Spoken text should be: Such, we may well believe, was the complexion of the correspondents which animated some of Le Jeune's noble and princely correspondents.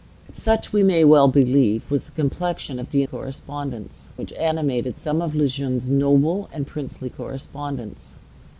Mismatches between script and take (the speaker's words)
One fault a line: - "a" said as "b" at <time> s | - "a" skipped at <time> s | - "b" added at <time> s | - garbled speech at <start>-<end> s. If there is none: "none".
none